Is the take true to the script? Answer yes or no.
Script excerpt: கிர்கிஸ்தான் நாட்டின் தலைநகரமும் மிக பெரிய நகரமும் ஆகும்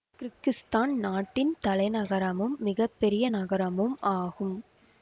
yes